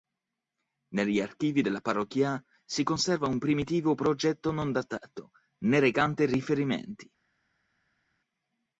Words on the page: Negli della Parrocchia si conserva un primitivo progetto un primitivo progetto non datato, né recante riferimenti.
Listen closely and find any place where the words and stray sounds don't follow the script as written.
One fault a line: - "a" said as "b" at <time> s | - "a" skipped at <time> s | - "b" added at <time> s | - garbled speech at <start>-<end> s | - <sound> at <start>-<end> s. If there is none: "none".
- "archivi" added at 1.2 s
- "un primitivo progetto" skipped at 4.5 s